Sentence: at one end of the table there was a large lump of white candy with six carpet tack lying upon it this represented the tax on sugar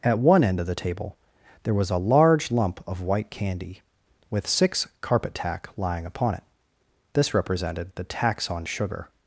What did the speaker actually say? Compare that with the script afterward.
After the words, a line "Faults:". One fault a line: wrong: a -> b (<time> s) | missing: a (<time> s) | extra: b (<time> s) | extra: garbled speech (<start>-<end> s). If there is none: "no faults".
at one end of the table there was a large lump of white candy with six carpet tack lying upon it this represented the tax on sugar
Faults:
no faults